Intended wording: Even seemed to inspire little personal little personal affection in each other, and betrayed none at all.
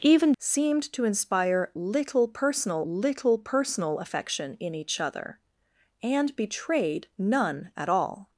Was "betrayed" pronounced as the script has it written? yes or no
yes